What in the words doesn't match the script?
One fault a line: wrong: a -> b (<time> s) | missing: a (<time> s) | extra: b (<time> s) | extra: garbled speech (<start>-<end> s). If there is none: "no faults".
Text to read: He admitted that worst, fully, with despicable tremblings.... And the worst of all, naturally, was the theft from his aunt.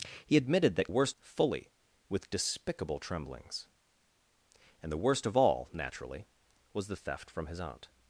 no faults